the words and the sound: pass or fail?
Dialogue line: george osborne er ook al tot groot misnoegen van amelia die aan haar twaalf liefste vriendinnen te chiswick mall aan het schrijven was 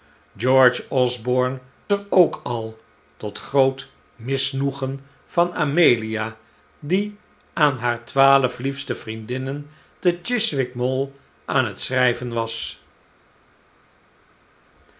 pass